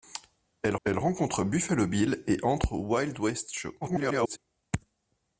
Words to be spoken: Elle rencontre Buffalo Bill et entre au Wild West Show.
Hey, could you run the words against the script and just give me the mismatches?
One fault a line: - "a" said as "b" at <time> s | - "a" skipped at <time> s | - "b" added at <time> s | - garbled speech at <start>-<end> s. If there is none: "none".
- "elle" added at 0.8 s
- garbled speech at 3.8-4.4 s